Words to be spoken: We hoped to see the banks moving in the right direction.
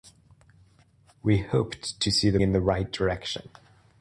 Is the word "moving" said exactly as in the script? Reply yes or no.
no